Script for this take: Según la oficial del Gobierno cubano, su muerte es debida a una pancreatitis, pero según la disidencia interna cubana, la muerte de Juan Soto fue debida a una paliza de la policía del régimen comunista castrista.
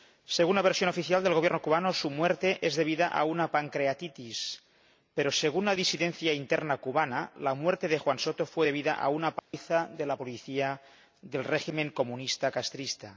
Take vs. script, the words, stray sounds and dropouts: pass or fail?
fail